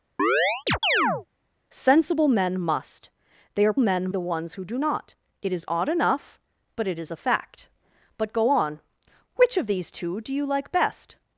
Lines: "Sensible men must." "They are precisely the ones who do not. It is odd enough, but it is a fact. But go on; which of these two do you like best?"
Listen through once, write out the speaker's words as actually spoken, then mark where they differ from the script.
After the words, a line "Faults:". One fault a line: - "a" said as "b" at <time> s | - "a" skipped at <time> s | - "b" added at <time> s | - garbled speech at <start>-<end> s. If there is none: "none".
"Sensible men must." "They are men the ones who do not. It is odd enough, but it is a fact. But go on; which of these two do you like best?"
Faults:
- "precisely" said as "men" at 3.8 s